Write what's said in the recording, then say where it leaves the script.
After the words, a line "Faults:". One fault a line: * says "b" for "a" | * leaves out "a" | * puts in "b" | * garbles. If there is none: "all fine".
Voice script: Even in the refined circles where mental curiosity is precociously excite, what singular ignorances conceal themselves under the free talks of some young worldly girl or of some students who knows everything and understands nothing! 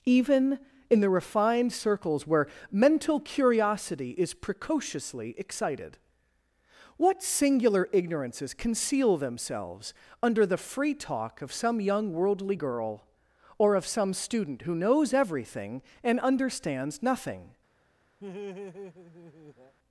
Even in the refined circles where mental curiosity is precociously excited, what singular ignorances conceal themselves under the free talk of some young worldly girl or of some student who knows everything and understands nothing!
Faults:
* says "excited" for "excite"
* says "talk" for "talks"
* says "student" for "students"